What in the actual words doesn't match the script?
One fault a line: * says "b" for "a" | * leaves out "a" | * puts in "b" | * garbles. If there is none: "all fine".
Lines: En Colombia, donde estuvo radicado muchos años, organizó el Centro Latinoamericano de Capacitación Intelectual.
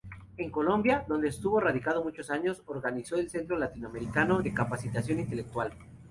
all fine